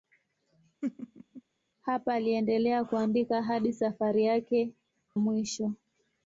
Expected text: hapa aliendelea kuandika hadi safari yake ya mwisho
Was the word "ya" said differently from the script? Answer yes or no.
yes